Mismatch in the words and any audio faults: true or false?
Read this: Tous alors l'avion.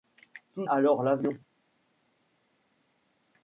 false